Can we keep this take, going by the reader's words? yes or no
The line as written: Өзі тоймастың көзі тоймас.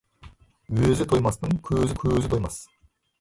no